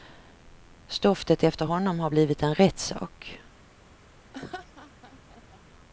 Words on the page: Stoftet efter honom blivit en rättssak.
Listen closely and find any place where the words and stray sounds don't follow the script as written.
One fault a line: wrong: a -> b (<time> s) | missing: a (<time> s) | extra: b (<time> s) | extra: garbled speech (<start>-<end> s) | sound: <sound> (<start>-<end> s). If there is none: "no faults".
extra: har (2.0 s)
sound: laugh (4.3-5.6 s)